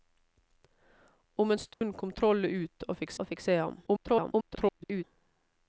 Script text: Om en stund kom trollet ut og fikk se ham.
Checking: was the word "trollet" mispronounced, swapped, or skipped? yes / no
no